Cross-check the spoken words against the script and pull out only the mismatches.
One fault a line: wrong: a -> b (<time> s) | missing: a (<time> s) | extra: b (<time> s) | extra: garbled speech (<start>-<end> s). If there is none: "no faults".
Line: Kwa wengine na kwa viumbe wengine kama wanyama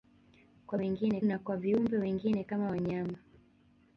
no faults